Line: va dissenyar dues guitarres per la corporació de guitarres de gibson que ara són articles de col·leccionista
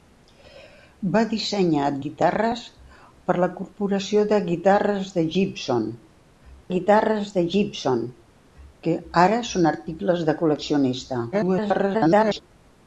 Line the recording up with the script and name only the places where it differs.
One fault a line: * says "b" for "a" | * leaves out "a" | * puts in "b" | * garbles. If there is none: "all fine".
* leaves out "dues"
* puts in "guitarres de gibson"
* garbles